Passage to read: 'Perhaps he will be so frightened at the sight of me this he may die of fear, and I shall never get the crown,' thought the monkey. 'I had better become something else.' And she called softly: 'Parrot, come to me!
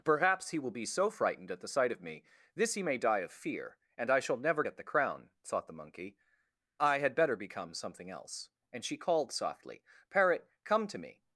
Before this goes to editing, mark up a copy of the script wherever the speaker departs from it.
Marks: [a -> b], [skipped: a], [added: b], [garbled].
'Perhaps he will be so frightened at the sight of me this he may die of fear, and I shall never get the crown,' thought the monkey. 'I had better become something else.' And she called softly: 'Parrot, come to me!